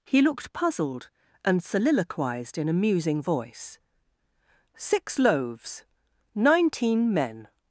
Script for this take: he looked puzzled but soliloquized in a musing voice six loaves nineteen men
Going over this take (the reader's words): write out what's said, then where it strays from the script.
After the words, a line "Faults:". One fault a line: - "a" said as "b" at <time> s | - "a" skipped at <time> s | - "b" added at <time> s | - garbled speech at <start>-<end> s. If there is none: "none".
he looked puzzled and soliloquized in a musing voice six loaves nineteen men
Faults:
- "but" said as "and" at 1.4 s